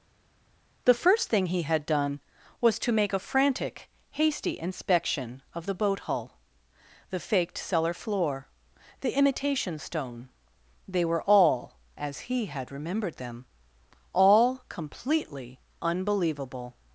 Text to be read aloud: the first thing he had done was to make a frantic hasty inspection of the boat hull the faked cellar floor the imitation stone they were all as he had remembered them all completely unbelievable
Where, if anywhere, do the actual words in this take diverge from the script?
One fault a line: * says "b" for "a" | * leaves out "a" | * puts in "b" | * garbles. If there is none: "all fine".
all fine